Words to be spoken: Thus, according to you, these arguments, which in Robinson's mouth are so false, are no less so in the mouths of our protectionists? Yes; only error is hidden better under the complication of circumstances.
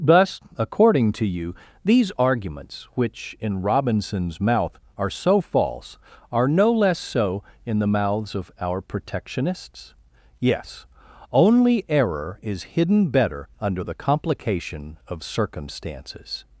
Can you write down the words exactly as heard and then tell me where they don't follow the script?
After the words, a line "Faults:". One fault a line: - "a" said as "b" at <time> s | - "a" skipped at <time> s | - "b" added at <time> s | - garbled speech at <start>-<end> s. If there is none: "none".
Thus, according to you, these arguments, which in Robinson's mouth are so false, are no less so in the mouths of our protectionists? Yes; only error is hidden better under the complication of circumstances.
Faults:
none